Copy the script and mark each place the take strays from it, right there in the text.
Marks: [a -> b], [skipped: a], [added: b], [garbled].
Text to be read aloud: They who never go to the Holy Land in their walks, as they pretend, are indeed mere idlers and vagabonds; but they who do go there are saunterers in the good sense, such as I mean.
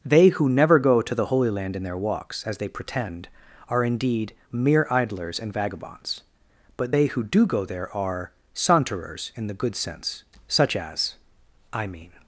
They who never go to the Holy Land in their walks, as they pretend, are indeed mere idlers and vagabonds; but they who do go there are saunterers in the good sense, such as I mean.